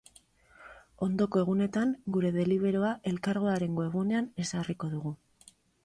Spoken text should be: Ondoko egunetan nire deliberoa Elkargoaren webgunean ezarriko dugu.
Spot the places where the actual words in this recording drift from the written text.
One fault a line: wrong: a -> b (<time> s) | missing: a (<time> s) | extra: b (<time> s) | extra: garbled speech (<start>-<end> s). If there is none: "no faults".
wrong: nire -> gure (2.2 s)